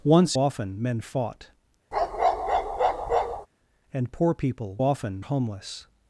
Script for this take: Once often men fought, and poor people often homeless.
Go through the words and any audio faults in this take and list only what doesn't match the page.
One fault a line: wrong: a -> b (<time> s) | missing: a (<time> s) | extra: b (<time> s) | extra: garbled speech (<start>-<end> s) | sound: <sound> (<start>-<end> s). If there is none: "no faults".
sound: bark (1.9-3.5 s)